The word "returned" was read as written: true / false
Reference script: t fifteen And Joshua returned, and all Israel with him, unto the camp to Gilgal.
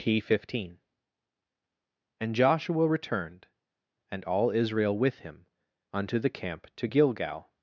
true